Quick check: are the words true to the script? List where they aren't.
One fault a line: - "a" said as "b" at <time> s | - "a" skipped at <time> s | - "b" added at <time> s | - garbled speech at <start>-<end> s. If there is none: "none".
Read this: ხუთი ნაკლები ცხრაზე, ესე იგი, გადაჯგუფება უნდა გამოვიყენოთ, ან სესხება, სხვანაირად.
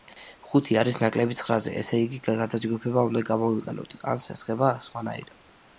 - "არის" added at 0.8 s